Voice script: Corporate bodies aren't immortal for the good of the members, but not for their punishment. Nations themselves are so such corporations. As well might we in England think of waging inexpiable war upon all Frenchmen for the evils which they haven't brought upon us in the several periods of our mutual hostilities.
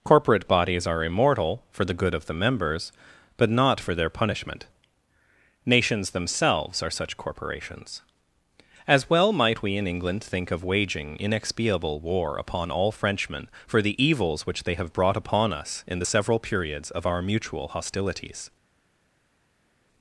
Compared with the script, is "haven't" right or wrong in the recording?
wrong